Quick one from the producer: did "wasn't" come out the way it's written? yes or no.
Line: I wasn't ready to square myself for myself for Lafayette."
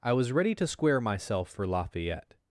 no